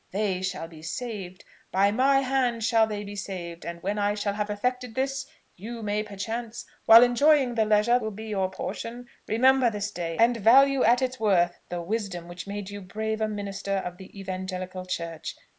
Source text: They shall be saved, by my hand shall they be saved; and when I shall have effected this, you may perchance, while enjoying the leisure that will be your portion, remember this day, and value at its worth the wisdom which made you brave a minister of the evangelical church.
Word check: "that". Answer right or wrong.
wrong